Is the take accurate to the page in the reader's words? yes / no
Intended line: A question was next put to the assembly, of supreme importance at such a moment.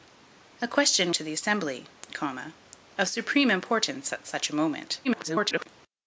no